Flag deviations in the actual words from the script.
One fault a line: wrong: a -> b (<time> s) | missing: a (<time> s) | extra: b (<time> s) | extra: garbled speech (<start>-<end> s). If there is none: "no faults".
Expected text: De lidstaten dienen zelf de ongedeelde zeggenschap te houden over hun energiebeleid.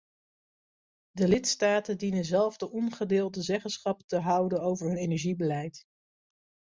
no faults